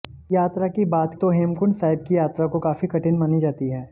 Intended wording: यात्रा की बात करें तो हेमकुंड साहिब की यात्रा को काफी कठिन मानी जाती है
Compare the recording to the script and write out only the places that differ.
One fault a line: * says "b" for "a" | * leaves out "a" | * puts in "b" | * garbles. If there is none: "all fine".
* leaves out "करें"